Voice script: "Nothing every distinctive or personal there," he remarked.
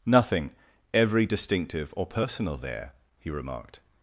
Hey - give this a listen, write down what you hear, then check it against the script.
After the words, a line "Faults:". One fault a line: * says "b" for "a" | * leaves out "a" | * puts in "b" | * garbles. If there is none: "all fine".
"Nothing every distinctive or personal there," he remarked.
Faults:
all fine